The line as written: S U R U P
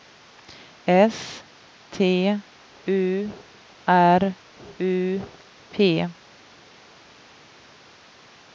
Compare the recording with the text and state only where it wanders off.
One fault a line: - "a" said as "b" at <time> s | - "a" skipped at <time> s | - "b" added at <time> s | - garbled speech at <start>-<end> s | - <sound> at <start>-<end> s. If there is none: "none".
- "T" added at 1.9 s